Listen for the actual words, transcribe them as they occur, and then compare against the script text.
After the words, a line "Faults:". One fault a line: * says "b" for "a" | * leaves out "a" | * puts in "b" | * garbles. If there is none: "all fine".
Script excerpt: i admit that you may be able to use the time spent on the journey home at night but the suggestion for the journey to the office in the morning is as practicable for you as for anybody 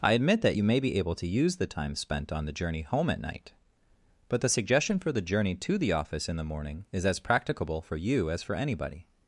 i admit that you may be able to use the time spent on the journey home at night but the suggestion for the journey to the office in the morning is as practicable for you as for anybody
Faults:
all fine